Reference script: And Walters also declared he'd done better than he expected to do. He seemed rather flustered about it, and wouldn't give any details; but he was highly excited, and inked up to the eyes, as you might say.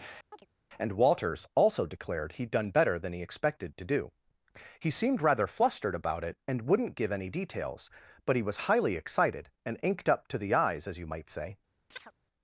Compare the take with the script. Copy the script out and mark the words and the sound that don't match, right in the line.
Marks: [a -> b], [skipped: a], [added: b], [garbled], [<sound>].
[chirp] And Walters also declared he'd done better than he expected to do. He seemed rather flustered about it, and wouldn't give any details; but he was highly excited, and inked up to the eyes, as you might say. [chirp]